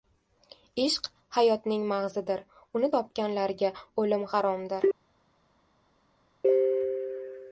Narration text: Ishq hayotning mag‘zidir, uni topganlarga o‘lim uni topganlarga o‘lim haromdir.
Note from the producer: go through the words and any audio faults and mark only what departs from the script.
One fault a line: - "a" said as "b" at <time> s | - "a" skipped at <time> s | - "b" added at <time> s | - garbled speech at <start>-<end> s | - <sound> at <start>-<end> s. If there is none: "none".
- "uni topganlarga o‘lim" skipped at 4.3 s